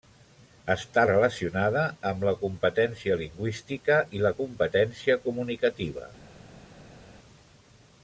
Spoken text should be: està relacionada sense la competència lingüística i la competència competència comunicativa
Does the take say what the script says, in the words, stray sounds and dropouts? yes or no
no